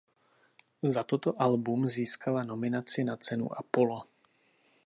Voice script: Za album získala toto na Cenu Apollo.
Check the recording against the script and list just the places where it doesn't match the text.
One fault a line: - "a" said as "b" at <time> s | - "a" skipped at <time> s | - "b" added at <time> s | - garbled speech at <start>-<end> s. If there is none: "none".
- "toto" added at 1.0 s
- "toto" said as "nominaci" at 2.4 s